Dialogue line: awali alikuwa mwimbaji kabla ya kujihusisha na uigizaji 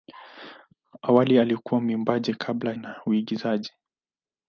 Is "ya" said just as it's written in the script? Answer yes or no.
no